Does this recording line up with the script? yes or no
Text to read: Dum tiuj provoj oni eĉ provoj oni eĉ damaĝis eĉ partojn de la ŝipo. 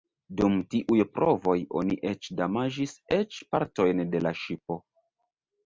no